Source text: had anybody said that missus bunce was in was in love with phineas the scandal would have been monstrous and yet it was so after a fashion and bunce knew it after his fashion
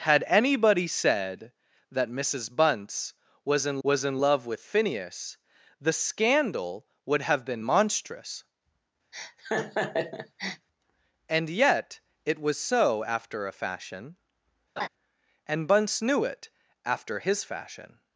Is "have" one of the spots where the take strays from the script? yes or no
no